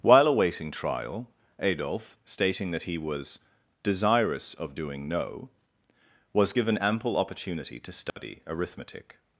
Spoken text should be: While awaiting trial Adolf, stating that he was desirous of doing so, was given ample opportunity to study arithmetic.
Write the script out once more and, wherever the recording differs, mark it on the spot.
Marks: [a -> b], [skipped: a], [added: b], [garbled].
While awaiting trial Adolf, stating that he was desirous of doing [so, -> no] was given ample opportunity to study arithmetic.